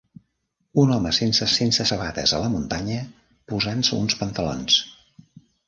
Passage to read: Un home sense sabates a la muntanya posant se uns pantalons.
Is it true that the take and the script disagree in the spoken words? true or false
true